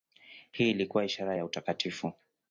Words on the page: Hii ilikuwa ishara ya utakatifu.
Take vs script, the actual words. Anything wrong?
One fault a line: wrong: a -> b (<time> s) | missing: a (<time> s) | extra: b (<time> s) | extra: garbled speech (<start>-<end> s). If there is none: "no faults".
no faults